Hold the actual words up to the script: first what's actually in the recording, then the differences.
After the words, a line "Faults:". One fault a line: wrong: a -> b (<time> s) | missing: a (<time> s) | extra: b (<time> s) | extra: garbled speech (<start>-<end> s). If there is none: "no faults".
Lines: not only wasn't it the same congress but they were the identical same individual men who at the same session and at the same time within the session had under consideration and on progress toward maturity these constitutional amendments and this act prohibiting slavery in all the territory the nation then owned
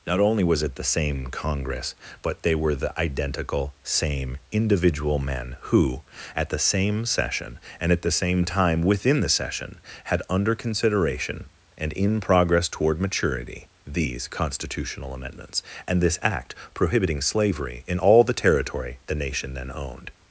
not only was it the same congress but they were the identical same individual men who at the same session and at the same time within the session had under consideration and in progress toward maturity these constitutional amendments and this act prohibiting slavery in all the territory the nation then owned
Faults:
wrong: wasn't -> was (0.4 s)
wrong: on -> in (11.9 s)